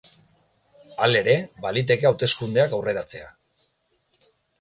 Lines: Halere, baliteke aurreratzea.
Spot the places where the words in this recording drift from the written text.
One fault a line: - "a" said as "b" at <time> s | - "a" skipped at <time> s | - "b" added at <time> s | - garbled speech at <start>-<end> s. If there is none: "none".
- "hauteskundeak" added at 2.1 s